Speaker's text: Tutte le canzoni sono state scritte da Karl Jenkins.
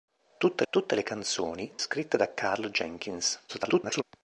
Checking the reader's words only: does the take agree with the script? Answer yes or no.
no